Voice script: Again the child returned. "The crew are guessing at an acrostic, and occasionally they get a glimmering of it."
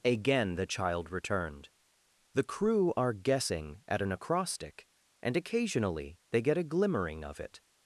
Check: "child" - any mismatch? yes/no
no